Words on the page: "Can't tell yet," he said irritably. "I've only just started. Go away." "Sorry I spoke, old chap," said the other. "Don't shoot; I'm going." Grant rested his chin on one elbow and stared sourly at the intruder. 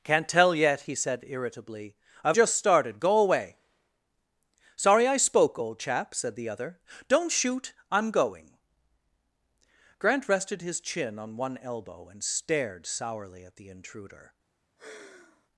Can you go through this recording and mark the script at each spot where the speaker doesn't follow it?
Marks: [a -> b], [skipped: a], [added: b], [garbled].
"Can't tell yet," he said irritably. "I've [skipped: only] just started. Go away." "Sorry I spoke, old chap," said the other. "Don't shoot; I'm going." Grant rested his chin on one elbow and stared sourly at the intruder.